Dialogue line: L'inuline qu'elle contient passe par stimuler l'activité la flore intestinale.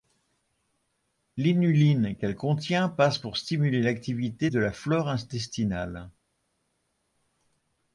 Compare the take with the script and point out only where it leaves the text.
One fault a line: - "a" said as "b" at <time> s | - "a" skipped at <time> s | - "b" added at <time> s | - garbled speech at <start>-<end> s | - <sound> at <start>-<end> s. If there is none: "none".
- "par" said as "pour" at 3.2 s
- "de" added at 4.4 s